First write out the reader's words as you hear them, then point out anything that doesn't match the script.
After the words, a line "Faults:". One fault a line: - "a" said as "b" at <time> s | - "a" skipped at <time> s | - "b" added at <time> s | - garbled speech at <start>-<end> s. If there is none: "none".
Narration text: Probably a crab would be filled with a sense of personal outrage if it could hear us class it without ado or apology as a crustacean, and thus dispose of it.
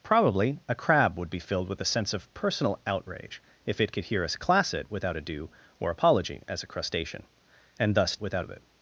Probably a crab would be filled with a sense of personal outrage if it could hear us class it without ado or apology as a crustacean, and thus without of it.
Faults:
- "dispose" said as "without" at 8.2 s